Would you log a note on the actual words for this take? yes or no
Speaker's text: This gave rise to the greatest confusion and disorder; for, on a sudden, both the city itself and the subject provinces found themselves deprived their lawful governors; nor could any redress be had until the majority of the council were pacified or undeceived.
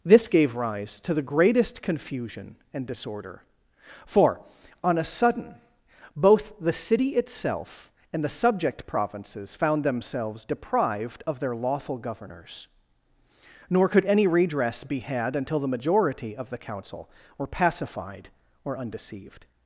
yes